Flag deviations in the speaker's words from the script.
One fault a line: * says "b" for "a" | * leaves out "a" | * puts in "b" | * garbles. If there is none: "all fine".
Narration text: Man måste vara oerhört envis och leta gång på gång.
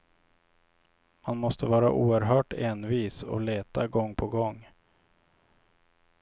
all fine